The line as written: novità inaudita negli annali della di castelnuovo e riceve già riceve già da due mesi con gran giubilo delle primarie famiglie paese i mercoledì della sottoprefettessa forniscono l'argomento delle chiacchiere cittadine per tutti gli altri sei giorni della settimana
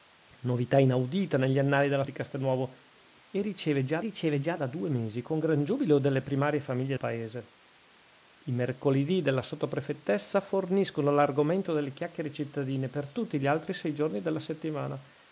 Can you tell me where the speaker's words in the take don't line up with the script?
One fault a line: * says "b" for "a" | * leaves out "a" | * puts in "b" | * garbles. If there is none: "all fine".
all fine